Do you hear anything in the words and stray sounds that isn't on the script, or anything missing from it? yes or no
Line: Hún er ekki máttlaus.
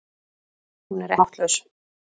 yes